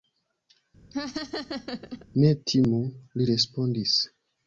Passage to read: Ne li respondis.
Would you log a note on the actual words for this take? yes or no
yes